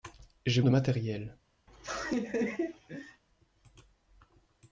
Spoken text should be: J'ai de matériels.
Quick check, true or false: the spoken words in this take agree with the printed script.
true